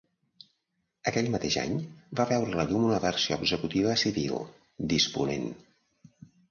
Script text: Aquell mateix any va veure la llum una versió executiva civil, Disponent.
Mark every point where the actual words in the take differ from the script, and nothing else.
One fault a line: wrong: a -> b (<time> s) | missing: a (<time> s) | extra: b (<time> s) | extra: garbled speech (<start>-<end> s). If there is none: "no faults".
no faults